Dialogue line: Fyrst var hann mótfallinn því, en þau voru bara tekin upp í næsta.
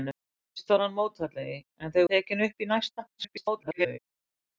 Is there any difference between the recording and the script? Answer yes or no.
yes